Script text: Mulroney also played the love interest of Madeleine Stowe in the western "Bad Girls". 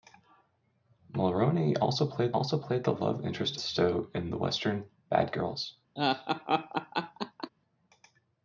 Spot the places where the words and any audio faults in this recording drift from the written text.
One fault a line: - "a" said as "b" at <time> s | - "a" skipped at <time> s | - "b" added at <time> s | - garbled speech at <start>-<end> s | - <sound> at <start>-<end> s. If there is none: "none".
- "also played" added at 2.3 s
- "of Madeleine" skipped at 3.6 s
- laugh at 6.0-7.5 s